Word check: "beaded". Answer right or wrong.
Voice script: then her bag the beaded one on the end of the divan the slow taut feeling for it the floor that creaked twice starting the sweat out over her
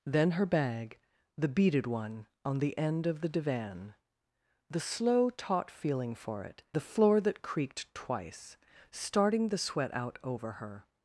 right